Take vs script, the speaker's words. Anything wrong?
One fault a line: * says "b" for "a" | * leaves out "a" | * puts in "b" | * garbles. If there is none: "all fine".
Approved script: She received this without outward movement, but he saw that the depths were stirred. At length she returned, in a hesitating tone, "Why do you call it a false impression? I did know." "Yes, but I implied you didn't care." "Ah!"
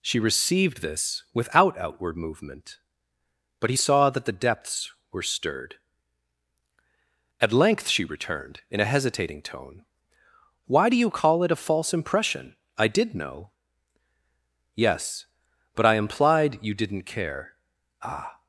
all fine